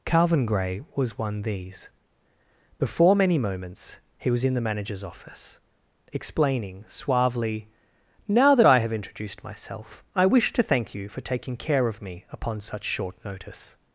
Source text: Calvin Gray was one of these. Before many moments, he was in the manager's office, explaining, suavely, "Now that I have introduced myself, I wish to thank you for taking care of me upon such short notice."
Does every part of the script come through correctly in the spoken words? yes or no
no